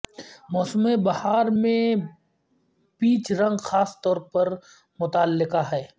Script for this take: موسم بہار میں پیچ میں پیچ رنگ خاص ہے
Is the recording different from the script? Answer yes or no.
yes